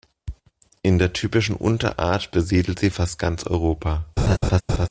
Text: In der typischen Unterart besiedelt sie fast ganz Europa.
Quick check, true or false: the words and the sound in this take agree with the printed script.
false